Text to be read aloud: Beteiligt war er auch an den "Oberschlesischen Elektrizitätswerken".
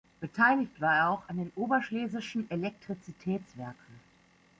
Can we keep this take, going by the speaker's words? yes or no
yes